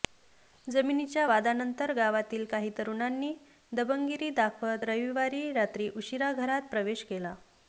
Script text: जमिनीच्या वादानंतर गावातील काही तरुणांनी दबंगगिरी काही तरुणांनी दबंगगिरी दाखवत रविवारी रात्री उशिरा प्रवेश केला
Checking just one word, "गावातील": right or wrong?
right